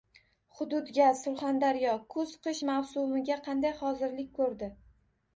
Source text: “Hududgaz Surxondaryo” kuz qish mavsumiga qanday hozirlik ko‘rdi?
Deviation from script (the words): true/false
false